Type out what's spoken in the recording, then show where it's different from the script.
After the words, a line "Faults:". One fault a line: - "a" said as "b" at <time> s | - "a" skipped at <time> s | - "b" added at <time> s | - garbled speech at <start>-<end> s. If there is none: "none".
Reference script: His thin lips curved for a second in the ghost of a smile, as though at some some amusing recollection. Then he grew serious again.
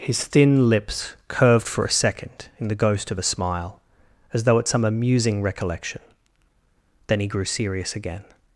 His thin lips curved for a second in the ghost of a smile, as though at some amusing recollection. Then he grew serious again.
Faults:
- "some" skipped at 4.8 s